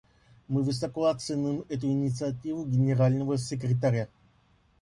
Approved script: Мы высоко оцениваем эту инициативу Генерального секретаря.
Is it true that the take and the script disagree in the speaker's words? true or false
false